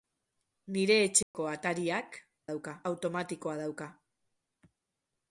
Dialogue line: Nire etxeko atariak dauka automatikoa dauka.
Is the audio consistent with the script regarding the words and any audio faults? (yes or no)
no